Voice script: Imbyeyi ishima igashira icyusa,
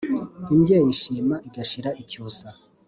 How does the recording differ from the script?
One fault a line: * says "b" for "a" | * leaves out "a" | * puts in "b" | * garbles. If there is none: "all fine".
all fine